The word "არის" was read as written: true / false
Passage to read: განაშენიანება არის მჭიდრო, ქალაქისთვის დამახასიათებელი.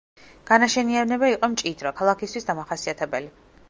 false